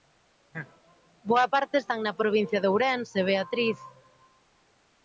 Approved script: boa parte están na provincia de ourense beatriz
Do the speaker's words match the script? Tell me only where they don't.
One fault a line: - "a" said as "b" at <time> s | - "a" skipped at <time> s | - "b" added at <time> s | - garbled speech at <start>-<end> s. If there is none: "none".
none